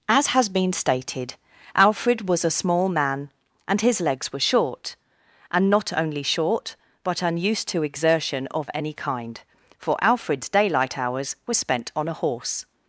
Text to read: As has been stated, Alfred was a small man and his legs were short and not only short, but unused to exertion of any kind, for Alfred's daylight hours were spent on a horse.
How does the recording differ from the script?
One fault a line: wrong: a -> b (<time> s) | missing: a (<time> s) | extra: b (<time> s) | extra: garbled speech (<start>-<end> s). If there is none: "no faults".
no faults